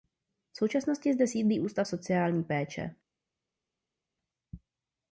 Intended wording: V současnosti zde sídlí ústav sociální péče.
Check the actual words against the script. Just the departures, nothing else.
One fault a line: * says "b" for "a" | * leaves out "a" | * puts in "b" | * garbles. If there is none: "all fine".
all fine